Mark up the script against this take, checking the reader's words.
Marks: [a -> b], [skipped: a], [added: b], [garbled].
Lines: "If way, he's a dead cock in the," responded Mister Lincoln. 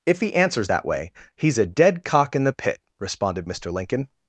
"If [added: he answers that] way, he's a dead cock in the," [added: pit] responded Mister Lincoln.